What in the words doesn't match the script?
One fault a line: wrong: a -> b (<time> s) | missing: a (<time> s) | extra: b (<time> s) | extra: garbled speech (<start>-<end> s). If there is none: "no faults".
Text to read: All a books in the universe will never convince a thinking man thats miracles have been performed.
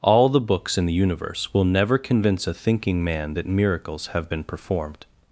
wrong: a -> the (0.3 s)
wrong: thats -> that (3.3 s)